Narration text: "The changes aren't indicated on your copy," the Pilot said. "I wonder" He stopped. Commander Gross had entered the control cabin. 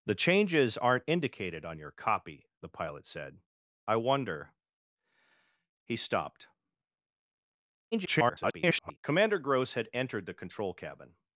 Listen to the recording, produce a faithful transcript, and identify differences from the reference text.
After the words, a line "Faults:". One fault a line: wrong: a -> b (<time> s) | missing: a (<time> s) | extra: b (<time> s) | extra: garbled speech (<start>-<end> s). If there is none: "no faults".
"The changes aren't indicated on your copy," the Pilot said. "I wonder" He stopped. [garbled] Commander Gross had entered the control cabin.
Faults:
extra: garbled speech (7.9-9.0 s)